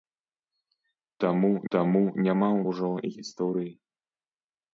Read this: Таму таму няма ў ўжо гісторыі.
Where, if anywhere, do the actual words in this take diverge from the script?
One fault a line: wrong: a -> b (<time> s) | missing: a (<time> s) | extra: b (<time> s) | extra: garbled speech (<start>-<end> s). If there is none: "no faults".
no faults